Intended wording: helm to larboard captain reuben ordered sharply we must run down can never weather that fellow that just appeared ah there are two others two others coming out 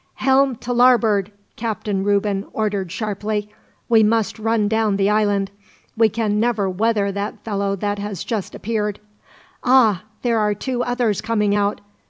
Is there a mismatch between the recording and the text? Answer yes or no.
yes